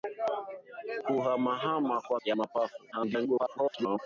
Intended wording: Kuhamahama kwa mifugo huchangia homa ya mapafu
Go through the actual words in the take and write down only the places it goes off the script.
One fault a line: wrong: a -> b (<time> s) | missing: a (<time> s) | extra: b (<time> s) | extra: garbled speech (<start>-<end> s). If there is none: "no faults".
missing: mifugo huchangia homa (2.2 s)
extra: garbled speech (2.9-4.0 s)